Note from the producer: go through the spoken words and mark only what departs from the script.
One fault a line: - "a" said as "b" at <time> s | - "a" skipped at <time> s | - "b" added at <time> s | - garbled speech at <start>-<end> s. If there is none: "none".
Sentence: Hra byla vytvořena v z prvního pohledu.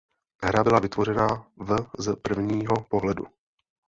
none